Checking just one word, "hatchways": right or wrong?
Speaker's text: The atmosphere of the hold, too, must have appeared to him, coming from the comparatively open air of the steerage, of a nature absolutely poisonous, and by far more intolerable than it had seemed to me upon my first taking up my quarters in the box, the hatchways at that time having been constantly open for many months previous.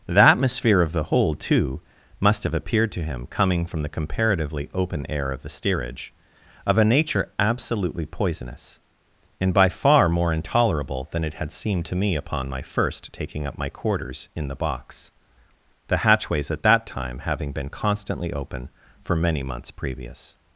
right